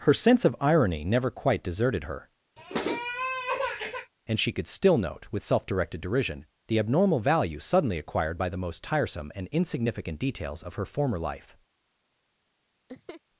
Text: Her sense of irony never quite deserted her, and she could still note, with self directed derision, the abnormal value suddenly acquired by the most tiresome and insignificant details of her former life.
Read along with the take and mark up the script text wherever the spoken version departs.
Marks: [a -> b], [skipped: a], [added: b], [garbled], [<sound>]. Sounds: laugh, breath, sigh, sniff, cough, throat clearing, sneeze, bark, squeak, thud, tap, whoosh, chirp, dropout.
Her sense of irony never quite deserted her, [sniff] and she could still note, with self directed derision, the abnormal value suddenly acquired by the most tiresome and insignificant details of her former life. [laugh]